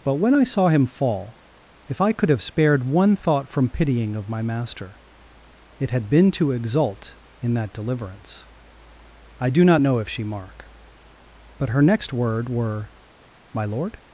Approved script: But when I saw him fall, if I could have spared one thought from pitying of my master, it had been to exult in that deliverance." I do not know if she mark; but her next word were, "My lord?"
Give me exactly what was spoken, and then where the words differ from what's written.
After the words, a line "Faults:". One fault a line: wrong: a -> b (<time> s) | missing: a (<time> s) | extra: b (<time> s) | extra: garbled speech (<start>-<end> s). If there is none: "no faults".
But when I saw him fall, if I could have spared one thought from pitying of my master, it had been to exult in that deliverance." I do not know if she mark; but her next word were, "My lord?"
Faults:
no faults